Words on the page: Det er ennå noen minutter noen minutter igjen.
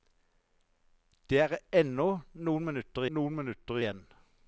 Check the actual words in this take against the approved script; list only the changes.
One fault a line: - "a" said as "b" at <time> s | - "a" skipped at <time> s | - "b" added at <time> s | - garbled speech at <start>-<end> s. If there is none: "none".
none